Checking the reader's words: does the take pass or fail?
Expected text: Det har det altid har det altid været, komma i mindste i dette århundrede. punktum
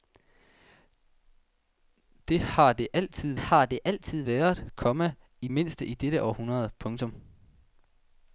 pass